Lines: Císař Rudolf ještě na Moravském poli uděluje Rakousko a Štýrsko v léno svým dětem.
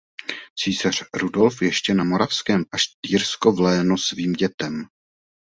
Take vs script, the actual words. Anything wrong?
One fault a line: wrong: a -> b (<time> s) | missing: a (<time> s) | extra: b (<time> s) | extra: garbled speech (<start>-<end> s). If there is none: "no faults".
missing: poli uděluje Rakousko (2.6 s)